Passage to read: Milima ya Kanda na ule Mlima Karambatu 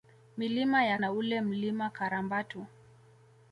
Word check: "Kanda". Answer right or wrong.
wrong